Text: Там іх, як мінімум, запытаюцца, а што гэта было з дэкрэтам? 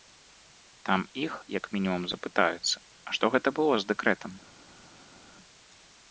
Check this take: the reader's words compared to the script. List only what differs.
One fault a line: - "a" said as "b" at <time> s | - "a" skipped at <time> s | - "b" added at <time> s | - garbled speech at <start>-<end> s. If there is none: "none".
none